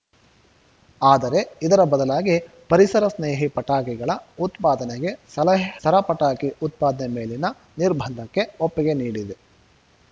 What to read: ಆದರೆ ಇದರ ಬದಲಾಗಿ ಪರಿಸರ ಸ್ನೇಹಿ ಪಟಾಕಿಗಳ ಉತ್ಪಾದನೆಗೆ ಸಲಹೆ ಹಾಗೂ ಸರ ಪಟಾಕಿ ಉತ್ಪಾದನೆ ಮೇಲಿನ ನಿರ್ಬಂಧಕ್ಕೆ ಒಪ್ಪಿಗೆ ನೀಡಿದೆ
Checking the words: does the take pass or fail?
fail